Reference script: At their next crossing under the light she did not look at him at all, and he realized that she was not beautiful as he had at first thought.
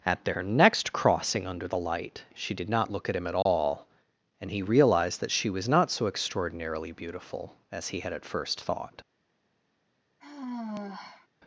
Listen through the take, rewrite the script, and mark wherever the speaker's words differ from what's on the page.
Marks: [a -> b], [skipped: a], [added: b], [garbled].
At their next crossing under the light she did not look at him at all, and he realized that she was not [added: so extraordinarily] beautiful as he had at first thought.